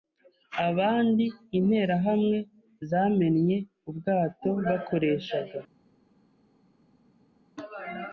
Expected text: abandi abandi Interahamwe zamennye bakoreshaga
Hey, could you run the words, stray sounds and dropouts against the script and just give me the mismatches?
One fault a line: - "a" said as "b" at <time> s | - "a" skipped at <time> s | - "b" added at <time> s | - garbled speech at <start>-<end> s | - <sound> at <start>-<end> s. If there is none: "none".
- "abandi" skipped at 1.2 s
- "ubwato" added at 3.9 s